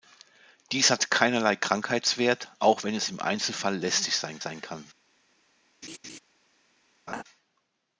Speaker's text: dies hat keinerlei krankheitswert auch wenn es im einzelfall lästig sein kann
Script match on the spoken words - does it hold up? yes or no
no